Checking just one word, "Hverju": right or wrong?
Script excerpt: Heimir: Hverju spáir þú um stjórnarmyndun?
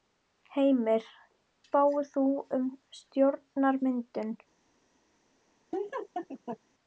wrong